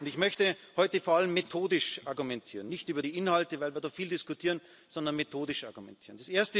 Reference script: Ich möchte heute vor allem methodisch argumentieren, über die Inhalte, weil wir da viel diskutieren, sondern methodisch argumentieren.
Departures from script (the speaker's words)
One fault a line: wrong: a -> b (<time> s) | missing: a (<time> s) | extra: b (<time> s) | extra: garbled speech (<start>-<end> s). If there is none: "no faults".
extra: nicht (2.7 s)